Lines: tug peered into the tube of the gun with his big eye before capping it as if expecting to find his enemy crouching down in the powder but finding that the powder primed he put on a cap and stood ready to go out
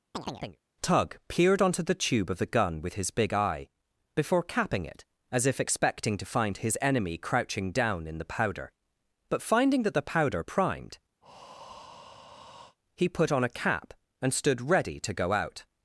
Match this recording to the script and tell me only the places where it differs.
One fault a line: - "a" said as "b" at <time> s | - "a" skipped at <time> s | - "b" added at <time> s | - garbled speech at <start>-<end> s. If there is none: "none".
- "into" said as "onto" at 1.6 s